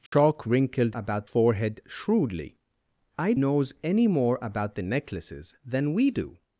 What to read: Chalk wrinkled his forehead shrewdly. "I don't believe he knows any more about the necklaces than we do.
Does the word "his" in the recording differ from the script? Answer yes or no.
yes